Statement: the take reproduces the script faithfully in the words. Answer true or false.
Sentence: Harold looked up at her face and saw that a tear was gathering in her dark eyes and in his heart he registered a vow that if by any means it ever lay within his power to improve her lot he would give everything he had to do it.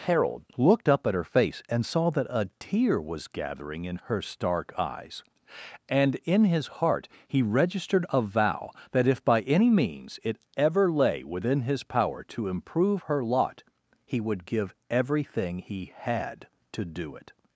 false